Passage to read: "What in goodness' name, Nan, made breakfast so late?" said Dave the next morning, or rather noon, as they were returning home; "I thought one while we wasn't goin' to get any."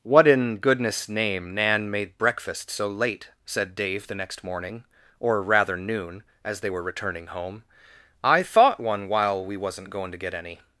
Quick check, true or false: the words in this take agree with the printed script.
true